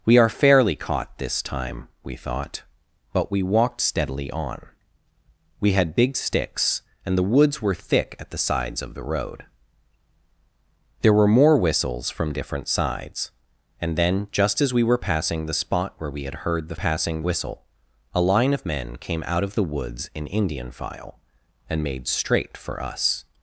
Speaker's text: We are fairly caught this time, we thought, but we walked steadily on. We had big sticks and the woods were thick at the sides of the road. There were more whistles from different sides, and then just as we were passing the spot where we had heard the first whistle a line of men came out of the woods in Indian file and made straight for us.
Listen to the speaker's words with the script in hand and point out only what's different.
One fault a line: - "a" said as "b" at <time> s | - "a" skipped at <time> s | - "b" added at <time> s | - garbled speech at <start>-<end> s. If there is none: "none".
- "first" said as "passing" at 16.7 s